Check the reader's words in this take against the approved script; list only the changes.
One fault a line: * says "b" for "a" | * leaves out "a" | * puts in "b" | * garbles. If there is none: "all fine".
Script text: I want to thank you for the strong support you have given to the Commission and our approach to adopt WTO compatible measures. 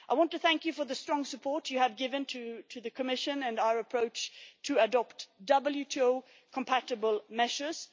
all fine